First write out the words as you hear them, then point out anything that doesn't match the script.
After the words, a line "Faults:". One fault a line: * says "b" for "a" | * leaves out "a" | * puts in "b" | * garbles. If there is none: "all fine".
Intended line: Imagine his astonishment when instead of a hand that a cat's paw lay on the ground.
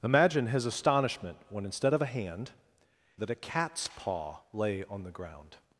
Imagine his astonishment when instead of a hand that a cat's paw lay on the ground.
Faults:
all fine